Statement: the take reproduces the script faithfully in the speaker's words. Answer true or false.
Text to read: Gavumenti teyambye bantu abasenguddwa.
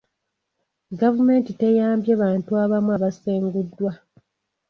false